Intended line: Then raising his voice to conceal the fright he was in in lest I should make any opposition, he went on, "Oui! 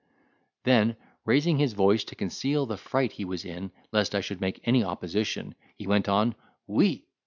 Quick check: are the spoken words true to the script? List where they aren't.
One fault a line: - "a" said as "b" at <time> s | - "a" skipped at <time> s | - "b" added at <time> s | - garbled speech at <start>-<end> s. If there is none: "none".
- "in" skipped at 3.7 s